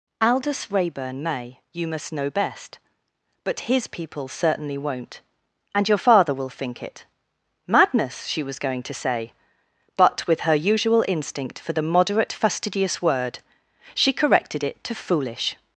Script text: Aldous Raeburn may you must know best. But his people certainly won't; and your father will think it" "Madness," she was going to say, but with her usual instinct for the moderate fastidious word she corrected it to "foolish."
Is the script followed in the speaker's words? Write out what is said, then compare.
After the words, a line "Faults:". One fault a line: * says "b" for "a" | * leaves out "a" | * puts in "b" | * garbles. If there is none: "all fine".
Aldous Raeburn may you must know best. But his people certainly won't; and your father will think it" "Madness," she was going to say, but with her usual instinct for the moderate fastidious word she corrected it to "foolish."
Faults:
all fine